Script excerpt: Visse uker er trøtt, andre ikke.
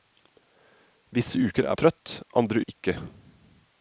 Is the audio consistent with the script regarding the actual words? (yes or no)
yes